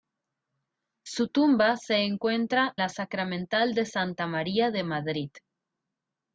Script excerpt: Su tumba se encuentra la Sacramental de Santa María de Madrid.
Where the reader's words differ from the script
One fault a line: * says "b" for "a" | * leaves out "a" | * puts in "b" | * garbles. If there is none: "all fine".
all fine